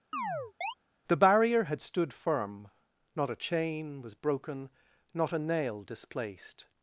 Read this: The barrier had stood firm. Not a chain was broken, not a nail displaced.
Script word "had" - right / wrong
right